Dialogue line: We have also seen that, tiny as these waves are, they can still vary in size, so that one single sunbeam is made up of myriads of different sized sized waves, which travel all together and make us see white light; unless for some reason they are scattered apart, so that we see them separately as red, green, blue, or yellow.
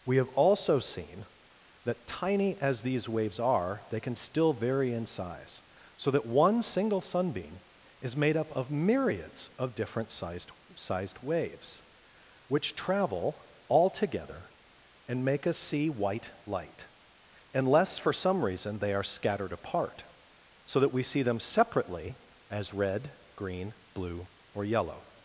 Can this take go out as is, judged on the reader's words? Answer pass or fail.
pass